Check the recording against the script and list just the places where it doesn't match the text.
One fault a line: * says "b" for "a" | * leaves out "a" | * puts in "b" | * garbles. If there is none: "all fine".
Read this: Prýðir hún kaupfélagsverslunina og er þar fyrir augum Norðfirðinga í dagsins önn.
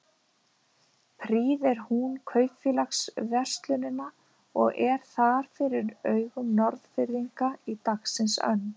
all fine